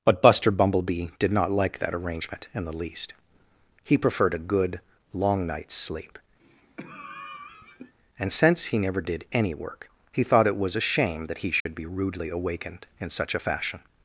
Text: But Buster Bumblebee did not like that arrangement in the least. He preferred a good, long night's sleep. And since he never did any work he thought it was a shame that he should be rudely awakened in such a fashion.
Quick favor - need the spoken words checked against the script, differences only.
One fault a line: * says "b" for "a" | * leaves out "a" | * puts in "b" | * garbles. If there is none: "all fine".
all fine